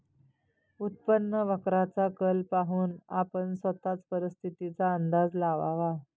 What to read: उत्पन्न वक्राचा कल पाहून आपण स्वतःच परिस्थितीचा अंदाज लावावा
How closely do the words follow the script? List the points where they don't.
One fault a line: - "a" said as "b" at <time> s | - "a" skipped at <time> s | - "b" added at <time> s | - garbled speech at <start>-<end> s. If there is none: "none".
none